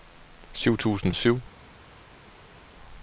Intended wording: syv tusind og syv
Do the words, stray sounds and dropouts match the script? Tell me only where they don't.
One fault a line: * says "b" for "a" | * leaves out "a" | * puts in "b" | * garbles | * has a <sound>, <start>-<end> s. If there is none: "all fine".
all fine